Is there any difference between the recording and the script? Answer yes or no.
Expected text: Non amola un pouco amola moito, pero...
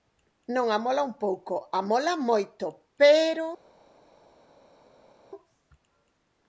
no